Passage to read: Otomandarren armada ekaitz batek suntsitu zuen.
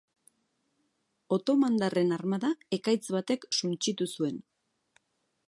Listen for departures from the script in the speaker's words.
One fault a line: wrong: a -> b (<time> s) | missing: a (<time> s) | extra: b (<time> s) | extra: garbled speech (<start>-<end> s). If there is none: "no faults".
no faults